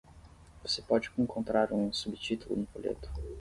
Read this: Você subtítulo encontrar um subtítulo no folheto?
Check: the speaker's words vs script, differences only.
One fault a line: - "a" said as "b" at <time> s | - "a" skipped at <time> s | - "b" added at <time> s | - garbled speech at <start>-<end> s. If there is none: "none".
- "subtítulo" said as "pode" at 0.8 s